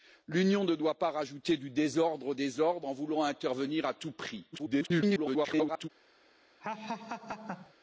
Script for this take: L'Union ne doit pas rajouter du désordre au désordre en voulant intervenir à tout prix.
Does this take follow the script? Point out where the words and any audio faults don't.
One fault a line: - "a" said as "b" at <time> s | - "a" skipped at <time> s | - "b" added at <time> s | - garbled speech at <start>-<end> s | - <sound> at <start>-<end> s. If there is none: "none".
- garbled speech at 4.5-5.9 s
- laugh at 6.6-7.7 s